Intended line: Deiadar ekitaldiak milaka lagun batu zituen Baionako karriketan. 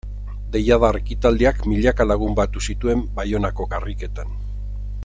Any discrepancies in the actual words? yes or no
no